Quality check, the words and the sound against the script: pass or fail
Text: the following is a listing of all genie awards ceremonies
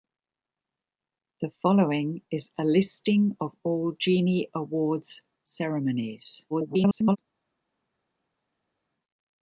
fail